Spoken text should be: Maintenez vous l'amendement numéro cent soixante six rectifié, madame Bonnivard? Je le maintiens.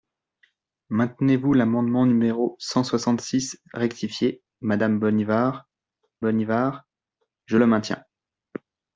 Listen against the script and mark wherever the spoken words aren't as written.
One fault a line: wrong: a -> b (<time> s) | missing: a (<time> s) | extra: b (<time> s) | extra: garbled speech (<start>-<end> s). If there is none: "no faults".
extra: Bonnivard (6.2 s)